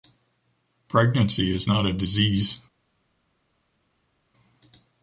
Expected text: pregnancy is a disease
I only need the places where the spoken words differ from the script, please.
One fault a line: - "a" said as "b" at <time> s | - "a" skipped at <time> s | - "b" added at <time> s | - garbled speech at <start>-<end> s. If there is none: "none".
- "not" added at 1.6 s